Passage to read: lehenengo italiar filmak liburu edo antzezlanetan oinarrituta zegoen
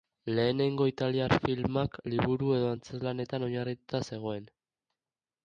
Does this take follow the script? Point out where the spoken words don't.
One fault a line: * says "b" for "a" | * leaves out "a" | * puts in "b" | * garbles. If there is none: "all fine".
all fine